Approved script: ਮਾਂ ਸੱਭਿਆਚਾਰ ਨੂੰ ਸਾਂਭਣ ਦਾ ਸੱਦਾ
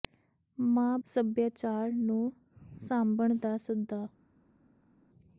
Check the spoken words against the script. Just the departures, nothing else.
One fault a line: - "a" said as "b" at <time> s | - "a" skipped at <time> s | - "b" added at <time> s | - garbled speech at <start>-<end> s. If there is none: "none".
none